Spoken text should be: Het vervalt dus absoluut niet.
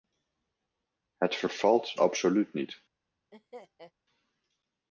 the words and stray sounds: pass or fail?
fail